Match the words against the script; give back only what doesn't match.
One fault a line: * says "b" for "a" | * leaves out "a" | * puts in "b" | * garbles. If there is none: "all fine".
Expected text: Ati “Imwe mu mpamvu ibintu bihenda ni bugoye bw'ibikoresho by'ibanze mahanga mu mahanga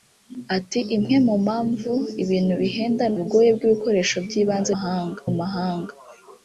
all fine